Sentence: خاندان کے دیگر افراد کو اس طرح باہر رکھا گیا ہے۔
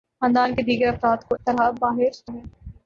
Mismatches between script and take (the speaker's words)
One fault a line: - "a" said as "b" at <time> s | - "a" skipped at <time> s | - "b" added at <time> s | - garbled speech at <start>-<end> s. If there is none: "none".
- "اس" skipped at 1.4 s
- "رکھا گیا" skipped at 2.3 s